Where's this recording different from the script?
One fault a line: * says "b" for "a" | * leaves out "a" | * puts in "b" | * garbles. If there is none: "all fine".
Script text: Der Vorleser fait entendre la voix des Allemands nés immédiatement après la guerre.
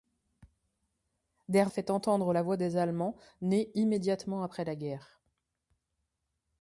* leaves out "Vorleser"